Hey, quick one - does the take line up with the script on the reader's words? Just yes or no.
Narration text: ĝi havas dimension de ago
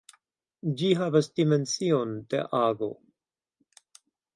yes